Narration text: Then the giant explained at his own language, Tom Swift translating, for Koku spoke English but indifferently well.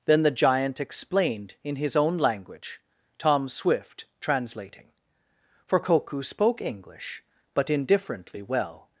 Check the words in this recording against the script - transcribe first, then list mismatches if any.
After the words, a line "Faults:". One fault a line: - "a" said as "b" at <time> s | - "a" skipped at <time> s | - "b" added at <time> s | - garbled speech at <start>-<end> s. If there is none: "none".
Then the giant explained in his own language, Tom Swift translating, for Koku spoke English but indifferently well.
Faults:
- "at" said as "in" at 1.6 s